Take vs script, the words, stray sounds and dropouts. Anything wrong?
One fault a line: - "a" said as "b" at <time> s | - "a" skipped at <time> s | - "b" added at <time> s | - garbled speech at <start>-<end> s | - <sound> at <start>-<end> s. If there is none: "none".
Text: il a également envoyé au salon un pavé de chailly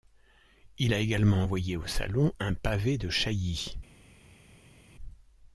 none